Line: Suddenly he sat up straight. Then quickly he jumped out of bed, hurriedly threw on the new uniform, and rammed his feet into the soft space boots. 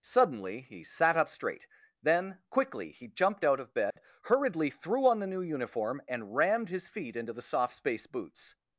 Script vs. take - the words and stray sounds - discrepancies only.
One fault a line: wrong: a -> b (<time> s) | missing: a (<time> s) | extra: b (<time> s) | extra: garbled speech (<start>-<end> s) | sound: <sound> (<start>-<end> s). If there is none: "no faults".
sound: dropout (3.9-4.0 s)